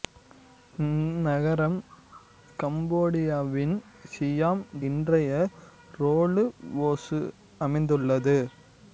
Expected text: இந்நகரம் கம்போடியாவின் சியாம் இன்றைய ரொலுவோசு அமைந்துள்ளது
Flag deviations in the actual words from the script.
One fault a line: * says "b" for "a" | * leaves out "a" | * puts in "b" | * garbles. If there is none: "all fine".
all fine